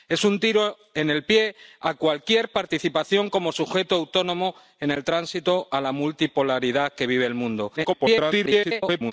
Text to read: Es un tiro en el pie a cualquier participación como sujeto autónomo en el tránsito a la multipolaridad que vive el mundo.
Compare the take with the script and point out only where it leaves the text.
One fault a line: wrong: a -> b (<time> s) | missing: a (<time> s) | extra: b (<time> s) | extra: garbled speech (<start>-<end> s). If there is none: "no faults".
extra: garbled speech (7.8-9.1 s)